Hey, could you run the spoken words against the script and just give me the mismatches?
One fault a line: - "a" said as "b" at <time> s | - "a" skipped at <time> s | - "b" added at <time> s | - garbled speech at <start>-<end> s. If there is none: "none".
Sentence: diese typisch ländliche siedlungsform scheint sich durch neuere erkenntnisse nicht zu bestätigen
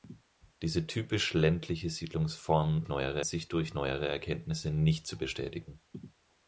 - "scheint" said as "neuere" at 2.9 s